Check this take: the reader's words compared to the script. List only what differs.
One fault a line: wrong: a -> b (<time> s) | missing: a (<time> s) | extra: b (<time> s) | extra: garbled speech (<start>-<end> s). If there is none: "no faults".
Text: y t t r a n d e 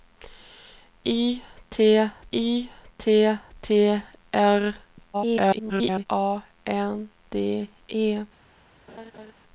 extra: y t (2.3 s)
extra: garbled speech (5.1-6.1 s)